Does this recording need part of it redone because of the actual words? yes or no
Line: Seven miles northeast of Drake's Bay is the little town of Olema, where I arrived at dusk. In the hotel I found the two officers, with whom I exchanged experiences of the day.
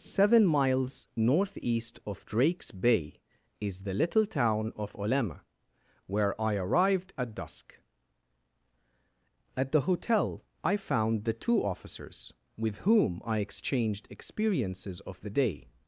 yes